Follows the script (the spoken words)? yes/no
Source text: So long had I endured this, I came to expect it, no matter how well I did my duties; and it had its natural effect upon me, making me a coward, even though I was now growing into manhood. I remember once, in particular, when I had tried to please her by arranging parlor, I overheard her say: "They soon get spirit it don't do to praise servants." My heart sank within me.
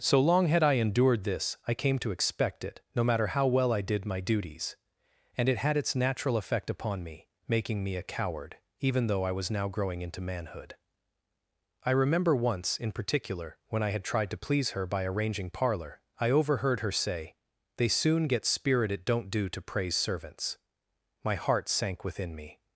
yes